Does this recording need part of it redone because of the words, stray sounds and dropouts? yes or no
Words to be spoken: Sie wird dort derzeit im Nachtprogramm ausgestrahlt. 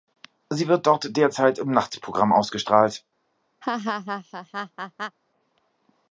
yes